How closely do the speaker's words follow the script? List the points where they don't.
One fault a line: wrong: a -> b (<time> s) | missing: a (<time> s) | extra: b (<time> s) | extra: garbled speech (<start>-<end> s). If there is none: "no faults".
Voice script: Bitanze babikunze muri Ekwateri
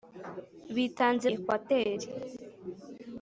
missing: babikunze muri (1.2 s)